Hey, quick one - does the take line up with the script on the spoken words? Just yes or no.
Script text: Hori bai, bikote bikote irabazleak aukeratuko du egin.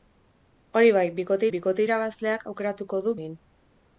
yes